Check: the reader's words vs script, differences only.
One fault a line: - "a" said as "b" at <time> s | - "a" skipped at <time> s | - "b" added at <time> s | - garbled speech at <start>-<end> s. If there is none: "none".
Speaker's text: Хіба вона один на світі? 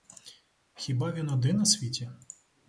- "вона" said as "він" at 1.1 s